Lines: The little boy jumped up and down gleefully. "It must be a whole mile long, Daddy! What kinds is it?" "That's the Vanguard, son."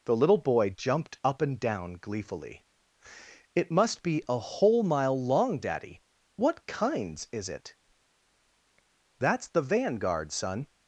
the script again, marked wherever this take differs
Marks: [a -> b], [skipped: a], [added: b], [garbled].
The little boy jumped up and down gleefully. "It must be a whole mile long, Daddy! What kinds is it?" "That's the Vanguard, son."